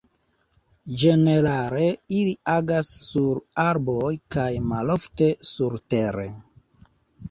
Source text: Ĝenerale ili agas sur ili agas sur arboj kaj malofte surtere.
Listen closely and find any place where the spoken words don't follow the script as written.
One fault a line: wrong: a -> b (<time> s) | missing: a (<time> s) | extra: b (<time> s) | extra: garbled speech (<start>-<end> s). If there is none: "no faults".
missing: ili agas sur (3.5 s)